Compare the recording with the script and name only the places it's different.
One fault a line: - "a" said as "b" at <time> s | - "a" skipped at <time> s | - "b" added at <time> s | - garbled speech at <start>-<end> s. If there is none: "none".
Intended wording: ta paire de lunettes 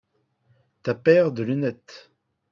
none